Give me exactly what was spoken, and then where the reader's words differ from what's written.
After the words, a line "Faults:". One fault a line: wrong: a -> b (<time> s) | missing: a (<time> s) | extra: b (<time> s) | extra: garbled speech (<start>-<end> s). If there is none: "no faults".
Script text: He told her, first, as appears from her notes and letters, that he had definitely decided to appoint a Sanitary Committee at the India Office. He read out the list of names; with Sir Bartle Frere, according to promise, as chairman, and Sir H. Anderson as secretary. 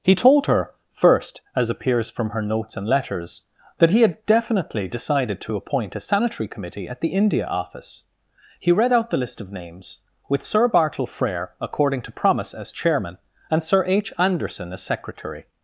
He told her, first, as appears from her notes and letters, that he had definitely decided to appoint a Sanitary Committee at the India Office. He read out the list of names; with Sir Bartle Frere, according to promise, as chairman, and Sir H. Anderson as secretary.
Faults:
no faults